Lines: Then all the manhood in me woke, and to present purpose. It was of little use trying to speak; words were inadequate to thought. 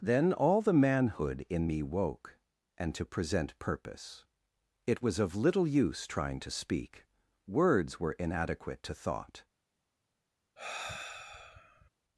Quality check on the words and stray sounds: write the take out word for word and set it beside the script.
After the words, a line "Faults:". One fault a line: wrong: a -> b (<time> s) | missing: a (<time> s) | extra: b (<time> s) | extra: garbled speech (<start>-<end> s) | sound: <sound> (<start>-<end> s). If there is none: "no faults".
Then all the manhood in me woke, and to present purpose. It was of little use trying to speak; words were inadequate to thought.
Faults:
sound: sigh (10.6-11.9 s)